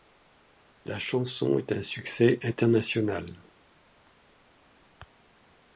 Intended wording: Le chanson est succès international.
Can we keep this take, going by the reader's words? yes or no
no